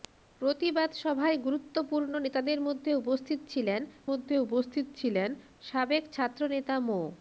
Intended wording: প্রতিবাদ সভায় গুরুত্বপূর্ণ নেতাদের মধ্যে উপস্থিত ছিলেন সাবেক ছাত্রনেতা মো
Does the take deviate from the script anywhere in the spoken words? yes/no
yes